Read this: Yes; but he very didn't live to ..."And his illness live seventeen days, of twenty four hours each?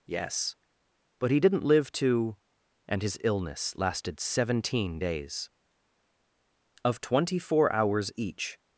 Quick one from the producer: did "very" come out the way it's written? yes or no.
no